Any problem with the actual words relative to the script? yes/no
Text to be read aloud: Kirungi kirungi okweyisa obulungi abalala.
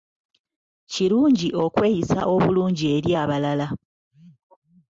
yes